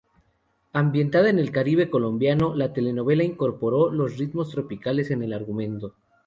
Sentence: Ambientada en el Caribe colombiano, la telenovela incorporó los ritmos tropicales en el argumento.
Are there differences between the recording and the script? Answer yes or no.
no